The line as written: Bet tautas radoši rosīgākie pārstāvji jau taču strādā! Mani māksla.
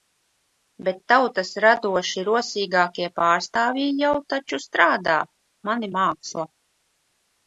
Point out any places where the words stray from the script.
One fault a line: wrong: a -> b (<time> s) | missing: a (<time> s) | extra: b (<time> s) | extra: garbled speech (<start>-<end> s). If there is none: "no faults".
no faults